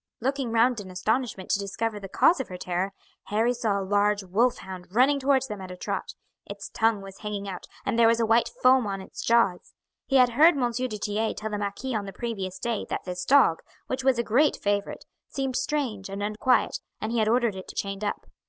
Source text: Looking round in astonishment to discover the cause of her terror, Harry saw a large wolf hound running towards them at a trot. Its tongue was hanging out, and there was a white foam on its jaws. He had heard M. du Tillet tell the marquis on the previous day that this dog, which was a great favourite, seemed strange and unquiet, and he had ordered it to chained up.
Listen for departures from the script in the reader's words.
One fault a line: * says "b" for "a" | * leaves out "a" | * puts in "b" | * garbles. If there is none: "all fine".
all fine